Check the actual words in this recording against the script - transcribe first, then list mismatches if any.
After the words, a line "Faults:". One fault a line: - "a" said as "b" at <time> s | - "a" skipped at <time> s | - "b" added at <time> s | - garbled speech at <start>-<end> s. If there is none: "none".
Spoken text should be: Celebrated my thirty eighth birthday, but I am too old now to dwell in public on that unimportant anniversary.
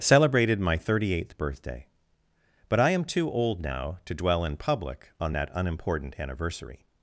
Celebrated my thirty eighth birthday, but I am too old now to dwell in public on that unimportant anniversary.
Faults:
none